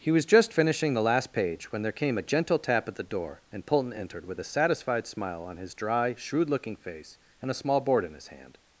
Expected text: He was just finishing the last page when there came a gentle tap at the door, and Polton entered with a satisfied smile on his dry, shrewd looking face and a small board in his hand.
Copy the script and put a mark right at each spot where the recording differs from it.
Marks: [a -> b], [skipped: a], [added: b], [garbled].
He was just finishing the last page when there came a gentle tap at the door, and Polton entered with a satisfied smile on his dry, shrewd looking face and a small board in his hand.